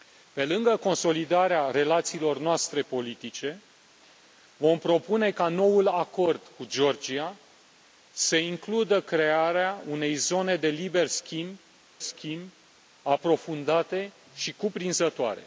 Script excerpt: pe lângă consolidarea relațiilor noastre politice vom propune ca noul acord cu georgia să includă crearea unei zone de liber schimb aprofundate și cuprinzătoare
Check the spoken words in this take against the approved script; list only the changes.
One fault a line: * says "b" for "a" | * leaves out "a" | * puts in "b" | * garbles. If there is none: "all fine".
* puts in "schimb"